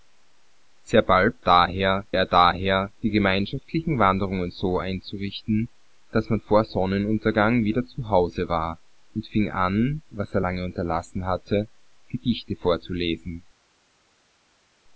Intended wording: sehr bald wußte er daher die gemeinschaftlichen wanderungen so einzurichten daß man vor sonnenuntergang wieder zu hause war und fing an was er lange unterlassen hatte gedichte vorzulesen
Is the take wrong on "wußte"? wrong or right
wrong